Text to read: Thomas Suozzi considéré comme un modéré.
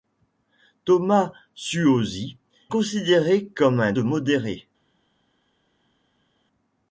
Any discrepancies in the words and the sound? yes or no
no